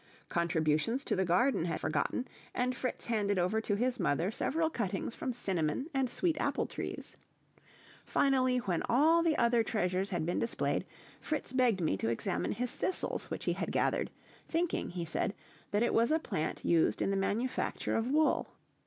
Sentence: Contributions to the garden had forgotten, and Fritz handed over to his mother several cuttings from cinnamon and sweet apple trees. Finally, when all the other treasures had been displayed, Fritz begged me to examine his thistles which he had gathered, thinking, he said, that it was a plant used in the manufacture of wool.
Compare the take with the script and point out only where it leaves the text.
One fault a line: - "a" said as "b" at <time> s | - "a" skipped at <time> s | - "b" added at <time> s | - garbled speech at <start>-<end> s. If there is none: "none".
none